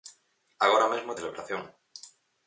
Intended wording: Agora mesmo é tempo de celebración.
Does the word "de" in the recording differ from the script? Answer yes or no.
yes